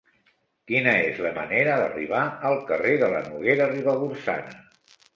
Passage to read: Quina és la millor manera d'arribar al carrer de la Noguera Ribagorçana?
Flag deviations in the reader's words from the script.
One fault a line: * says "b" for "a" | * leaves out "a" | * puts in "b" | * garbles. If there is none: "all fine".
* leaves out "millor"